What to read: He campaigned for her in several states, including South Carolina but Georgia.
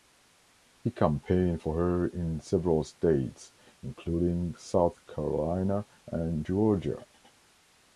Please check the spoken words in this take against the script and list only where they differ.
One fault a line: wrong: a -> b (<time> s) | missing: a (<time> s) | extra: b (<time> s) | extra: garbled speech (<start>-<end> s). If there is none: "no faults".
wrong: but -> and (6.1 s)